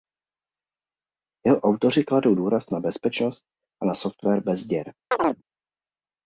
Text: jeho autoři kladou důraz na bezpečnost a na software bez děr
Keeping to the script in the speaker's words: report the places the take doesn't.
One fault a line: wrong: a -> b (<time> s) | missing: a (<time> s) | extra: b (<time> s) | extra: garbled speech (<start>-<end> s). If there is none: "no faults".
no faults